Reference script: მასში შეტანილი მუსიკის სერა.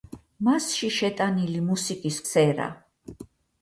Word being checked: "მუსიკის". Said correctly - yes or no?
yes